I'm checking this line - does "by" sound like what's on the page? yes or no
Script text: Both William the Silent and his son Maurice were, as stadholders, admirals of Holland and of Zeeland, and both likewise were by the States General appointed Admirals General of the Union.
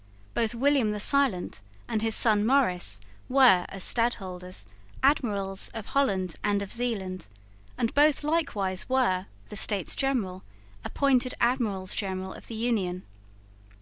no